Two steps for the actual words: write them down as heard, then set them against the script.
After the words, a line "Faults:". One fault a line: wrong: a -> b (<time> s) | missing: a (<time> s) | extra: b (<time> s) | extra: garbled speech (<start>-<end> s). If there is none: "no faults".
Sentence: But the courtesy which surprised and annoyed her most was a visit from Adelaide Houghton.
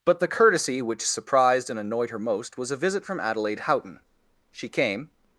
But the courtesy which surprised and annoyed her most was a visit from Adelaide Houghton. She came
Faults:
extra: She came (4.5 s)